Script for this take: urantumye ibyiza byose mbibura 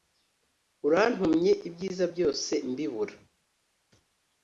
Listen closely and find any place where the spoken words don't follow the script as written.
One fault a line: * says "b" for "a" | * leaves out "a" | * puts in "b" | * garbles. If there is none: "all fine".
all fine